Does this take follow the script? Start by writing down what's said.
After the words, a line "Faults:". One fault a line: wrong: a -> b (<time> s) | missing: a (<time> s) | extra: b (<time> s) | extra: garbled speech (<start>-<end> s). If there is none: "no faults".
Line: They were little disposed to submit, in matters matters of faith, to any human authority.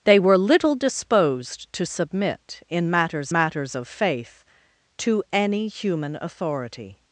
They were little disposed to submit, in matters matters of faith, to any human authority.
Faults:
no faults